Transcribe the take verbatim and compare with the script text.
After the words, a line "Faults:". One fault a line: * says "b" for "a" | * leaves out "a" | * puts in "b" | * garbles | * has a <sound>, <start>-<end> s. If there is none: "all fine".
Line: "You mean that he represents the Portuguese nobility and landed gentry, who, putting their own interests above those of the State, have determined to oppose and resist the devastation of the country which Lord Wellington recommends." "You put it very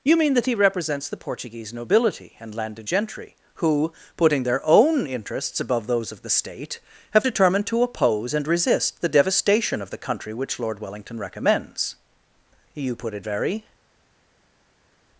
"You mean that he represents the Portuguese nobility and landed gentry, who, putting their own interests above those of the State, have determined to oppose and resist the devastation of the country which Lord Wellington recommends." "You put it very
Faults:
all fine